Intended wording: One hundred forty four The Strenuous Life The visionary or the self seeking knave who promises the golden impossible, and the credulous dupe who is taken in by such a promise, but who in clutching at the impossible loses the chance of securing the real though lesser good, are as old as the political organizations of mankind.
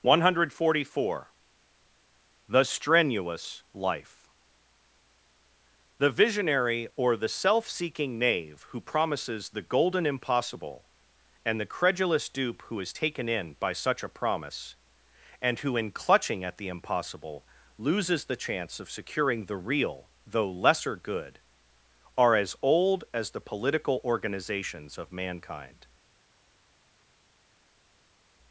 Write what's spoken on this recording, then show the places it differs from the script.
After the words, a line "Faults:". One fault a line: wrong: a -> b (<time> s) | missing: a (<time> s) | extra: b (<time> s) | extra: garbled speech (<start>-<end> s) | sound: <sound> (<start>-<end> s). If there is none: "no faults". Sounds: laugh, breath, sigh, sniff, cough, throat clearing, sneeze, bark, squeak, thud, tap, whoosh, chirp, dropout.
One hundred forty four The Strenuous Life The visionary or the self seeking knave who promises the golden impossible, and the credulous dupe who is taken in by such a promise, and who in clutching at the impossible loses the chance of securing the real though lesser good, are as old as the political organizations of mankind.
Faults:
wrong: but -> and (15.4 s)